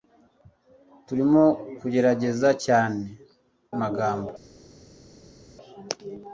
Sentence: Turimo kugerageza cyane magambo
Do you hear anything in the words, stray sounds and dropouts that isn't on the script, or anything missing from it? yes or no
no